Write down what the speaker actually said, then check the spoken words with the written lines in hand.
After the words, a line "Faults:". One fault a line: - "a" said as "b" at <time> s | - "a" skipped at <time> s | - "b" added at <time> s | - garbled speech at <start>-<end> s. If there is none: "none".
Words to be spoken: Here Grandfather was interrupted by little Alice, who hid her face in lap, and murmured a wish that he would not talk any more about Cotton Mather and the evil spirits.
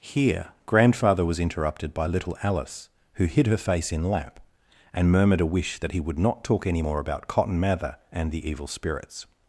Here Grandfather was interrupted by little Alice, who hid her face in lap, and murmured a wish that he would not talk any more about Cotton Mather and the evil spirits.
Faults:
none